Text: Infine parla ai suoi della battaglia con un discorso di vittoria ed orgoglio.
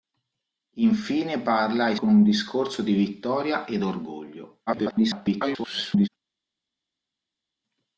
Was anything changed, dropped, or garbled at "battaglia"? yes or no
yes